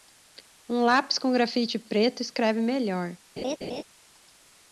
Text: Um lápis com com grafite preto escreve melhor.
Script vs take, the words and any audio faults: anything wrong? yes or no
yes